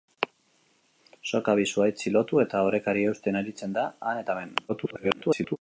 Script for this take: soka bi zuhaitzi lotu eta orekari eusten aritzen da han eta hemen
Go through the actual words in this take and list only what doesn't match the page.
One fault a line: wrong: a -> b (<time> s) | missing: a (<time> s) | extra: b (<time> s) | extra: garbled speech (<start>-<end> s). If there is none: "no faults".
extra: garbled speech (4.7-5.6 s)